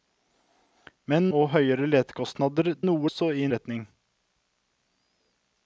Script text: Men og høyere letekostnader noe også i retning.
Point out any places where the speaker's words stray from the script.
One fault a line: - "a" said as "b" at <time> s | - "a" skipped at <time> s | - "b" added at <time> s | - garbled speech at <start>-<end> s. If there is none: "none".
none